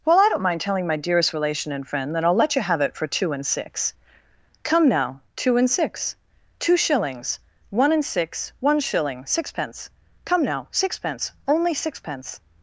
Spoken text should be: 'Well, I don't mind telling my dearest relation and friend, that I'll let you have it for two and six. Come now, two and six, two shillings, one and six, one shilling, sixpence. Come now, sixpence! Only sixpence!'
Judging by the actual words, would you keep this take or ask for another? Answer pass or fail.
pass